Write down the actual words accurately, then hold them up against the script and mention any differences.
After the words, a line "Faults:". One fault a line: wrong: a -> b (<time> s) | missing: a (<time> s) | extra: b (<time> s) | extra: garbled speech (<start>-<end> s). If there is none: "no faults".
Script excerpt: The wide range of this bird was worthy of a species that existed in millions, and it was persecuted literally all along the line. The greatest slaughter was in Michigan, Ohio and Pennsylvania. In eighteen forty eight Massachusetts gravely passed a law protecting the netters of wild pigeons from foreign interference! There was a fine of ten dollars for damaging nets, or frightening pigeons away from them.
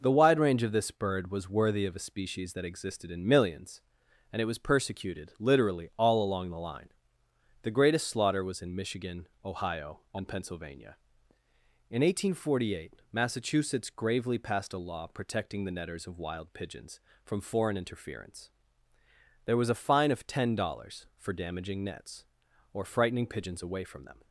The wide range of this bird was worthy of a species that existed in millions, and it was persecuted literally all along the line. The greatest slaughter was in Michigan, Ohio and Pennsylvania. In eighteen forty eight Massachusetts gravely passed a law protecting the netters of wild pigeons from foreign interference! There was a fine of ten dollars for damaging nets, or frightening pigeons away from them.
Faults:
no faults